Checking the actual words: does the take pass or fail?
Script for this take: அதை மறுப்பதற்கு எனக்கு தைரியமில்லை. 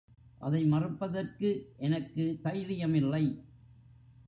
pass